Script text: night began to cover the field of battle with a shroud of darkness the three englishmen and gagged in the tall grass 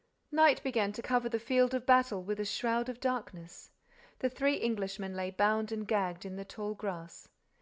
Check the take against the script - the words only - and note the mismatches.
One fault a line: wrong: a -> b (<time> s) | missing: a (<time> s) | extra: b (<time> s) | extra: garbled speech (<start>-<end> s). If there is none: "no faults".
extra: lay bound (5.1 s)